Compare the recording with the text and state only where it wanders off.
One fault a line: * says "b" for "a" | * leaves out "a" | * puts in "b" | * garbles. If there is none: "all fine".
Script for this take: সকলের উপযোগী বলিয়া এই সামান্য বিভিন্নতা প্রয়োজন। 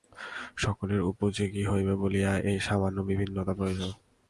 * puts in "হইবে"